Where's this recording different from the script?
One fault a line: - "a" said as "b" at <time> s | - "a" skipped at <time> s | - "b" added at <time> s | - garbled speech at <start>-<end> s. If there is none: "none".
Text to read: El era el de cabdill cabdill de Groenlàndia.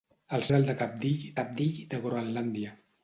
none